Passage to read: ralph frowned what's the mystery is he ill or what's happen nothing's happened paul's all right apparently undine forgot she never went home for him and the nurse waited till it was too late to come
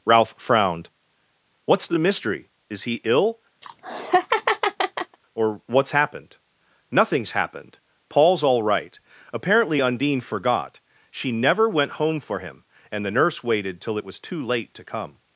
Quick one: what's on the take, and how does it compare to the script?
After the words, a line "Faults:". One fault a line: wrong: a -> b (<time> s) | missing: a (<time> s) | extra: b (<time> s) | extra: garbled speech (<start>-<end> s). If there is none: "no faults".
ralph frowned what's the mystery is he ill or what's happened nothing's happened paul's all right apparently undine forgot she never went home for him and the nurse waited till it was too late to come
Faults:
wrong: happen -> happened (5.9 s)